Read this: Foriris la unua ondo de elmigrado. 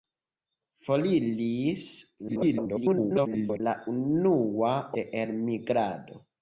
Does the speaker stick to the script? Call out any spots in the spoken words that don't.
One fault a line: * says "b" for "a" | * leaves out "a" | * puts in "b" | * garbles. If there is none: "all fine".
* garbles
* leaves out "ondo"